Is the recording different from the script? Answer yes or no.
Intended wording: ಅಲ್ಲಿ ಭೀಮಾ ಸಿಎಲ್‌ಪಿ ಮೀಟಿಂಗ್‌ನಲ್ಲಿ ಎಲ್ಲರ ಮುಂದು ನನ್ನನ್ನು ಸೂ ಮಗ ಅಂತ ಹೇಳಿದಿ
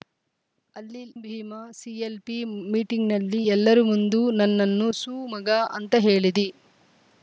no